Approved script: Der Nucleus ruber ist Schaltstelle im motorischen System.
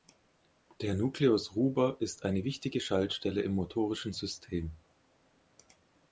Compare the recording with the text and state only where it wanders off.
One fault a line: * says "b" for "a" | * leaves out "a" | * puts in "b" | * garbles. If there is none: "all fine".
* puts in "eine wichtige"